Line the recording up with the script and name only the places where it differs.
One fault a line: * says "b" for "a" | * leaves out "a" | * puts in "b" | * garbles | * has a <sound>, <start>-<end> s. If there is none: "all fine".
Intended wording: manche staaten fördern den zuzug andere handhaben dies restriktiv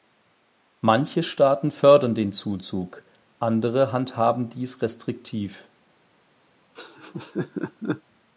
* has a laugh, 6.7-8.0 s